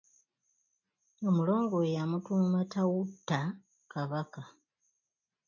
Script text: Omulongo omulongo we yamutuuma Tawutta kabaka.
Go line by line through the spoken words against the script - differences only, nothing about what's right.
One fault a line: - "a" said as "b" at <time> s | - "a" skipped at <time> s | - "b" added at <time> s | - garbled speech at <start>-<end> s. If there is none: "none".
- "omulongo" skipped at 1.7 s